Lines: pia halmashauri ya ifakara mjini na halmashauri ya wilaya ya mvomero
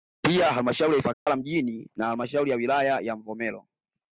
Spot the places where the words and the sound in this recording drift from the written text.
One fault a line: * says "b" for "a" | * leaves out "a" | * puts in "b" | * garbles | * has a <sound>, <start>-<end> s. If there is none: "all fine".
* has a dropout, 1.1-1.3 s